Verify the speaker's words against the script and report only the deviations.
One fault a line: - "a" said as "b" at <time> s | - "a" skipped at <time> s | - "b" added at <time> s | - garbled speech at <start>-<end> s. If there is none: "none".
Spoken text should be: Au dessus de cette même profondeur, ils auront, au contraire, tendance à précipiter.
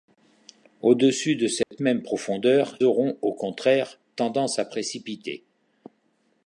- "ils" skipped at 2.8 s